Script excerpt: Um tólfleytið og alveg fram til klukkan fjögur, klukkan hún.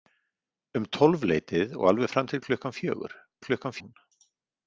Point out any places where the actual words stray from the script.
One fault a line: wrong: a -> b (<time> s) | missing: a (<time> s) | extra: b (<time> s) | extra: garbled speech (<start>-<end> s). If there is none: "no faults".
no faults